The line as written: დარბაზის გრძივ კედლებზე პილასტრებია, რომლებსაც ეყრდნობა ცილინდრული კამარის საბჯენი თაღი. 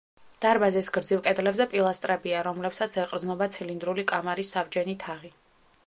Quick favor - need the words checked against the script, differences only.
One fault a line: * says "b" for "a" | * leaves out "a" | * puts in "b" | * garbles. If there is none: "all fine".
all fine